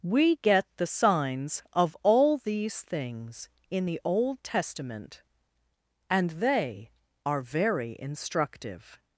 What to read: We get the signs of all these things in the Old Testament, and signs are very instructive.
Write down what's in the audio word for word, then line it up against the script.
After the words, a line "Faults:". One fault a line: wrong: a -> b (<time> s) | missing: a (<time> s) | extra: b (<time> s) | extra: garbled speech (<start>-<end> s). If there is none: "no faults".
We get the signs of all these things in the Old Testament, and they are very instructive.
Faults:
wrong: signs -> they (6.3 s)